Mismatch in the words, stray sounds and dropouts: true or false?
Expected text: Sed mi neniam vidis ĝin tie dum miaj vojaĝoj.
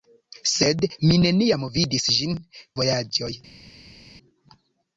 true